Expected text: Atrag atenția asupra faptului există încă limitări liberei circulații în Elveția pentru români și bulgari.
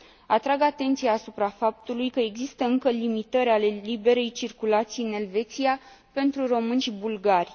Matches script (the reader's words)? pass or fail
fail